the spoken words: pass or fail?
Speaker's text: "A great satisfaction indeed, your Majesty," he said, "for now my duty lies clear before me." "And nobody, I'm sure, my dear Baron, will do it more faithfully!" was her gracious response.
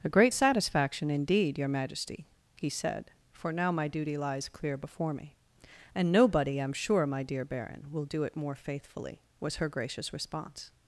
pass